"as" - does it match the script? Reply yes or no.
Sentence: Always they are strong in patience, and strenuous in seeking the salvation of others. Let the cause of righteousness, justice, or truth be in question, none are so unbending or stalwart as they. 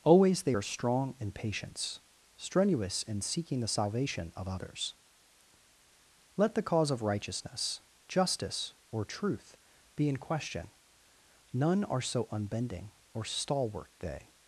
no